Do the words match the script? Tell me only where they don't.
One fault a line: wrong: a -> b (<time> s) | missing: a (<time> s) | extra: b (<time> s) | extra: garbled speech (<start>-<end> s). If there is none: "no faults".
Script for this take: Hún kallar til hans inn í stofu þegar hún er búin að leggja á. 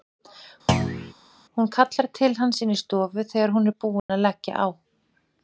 no faults